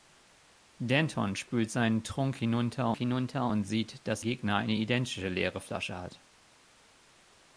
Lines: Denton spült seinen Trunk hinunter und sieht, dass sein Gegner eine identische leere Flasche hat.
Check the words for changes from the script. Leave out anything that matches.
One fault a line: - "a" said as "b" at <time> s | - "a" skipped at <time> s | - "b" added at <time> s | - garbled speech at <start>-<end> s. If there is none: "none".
- "hinunter" added at 2.9 s
- "sein" skipped at 4.2 s